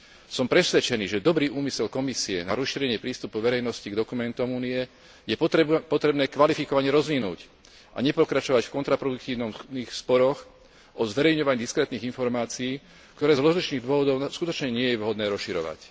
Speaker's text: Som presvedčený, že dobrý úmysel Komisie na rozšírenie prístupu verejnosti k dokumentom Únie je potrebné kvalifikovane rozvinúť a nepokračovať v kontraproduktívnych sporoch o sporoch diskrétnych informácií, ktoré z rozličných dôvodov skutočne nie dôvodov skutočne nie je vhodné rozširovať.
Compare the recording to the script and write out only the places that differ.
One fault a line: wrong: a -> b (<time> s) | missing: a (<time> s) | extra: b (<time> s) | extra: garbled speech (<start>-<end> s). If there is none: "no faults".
wrong: sporoch -> zverejňovaní (11.1 s)
missing: dôvodov skutočne nie (15.0 s)